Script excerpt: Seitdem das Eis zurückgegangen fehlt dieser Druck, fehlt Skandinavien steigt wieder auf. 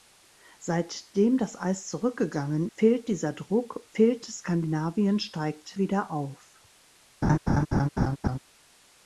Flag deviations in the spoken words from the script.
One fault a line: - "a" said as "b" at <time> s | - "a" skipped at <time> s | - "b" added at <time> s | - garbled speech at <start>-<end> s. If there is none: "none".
none